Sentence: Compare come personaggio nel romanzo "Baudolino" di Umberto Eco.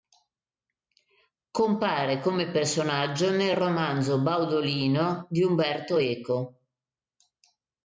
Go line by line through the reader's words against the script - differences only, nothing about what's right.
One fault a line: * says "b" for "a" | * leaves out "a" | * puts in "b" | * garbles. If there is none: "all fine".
all fine